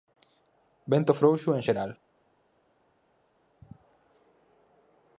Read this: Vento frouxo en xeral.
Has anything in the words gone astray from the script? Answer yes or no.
no